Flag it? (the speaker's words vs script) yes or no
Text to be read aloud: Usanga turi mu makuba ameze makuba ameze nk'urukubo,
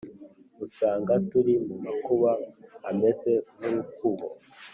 yes